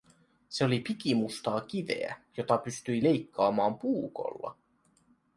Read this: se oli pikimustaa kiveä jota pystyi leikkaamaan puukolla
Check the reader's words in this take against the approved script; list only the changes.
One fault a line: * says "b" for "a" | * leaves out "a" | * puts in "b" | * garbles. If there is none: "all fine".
all fine